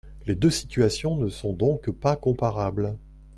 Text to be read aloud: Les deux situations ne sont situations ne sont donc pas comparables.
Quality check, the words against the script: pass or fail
fail